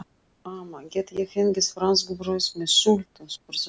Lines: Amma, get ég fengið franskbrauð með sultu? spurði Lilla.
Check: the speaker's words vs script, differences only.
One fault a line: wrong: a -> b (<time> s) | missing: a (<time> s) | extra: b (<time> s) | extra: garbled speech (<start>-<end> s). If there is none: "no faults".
no faults